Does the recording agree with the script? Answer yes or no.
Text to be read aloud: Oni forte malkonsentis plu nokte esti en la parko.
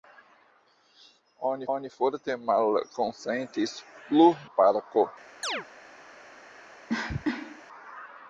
no